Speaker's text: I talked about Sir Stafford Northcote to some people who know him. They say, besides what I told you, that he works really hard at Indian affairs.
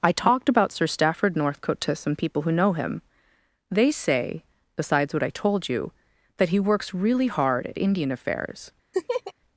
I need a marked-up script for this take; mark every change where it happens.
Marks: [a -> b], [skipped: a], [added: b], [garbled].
I talked about Sir Stafford Northcote to some people who know him. They say, besides what I told you, that he works really hard at Indian affairs.